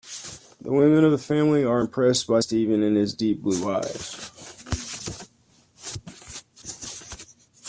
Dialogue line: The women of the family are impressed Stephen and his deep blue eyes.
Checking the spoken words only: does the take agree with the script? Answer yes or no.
no